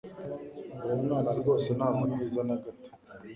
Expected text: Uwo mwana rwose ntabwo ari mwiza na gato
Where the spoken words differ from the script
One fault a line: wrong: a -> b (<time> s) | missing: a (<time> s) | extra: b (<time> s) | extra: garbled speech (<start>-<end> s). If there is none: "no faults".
missing: ari (2.0 s)